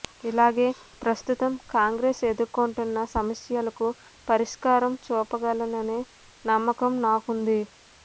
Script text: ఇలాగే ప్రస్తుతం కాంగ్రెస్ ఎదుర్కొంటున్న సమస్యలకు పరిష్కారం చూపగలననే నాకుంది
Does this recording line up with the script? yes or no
no